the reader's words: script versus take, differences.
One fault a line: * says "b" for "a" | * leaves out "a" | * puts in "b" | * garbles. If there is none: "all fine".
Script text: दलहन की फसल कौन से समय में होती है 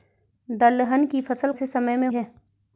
* leaves out "कौन"
* leaves out "होती"